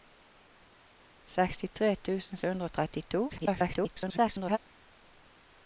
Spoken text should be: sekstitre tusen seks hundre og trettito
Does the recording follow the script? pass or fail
fail